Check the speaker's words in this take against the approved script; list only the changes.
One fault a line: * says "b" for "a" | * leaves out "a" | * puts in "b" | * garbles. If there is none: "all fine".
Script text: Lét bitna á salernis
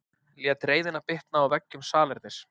* puts in "reiðina"
* puts in "veggjum"